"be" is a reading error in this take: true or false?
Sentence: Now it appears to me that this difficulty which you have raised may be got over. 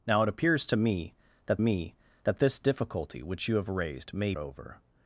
true